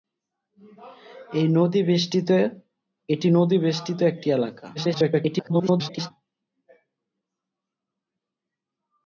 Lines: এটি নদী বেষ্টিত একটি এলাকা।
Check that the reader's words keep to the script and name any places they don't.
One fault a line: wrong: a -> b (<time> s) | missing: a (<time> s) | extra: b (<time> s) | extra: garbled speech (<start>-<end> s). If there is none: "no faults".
extra: garbled speech (4.7-6.1 s)